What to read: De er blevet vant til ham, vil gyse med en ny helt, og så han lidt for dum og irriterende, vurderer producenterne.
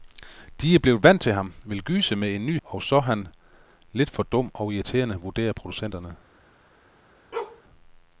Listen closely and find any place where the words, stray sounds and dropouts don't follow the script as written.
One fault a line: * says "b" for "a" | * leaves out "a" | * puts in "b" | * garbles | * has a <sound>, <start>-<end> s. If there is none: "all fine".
* leaves out "helt"
* has a bark, 7.3-7.6 s